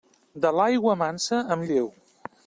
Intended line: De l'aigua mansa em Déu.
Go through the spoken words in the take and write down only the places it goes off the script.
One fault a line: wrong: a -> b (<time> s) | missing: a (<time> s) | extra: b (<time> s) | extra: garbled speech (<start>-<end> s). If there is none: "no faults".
no faults